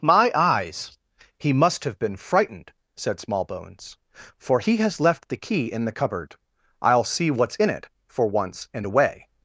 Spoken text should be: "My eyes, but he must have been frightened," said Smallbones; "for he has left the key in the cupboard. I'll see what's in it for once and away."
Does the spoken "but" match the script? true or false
false